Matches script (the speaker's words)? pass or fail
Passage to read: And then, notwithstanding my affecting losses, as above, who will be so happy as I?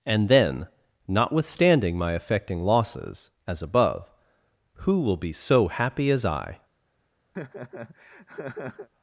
pass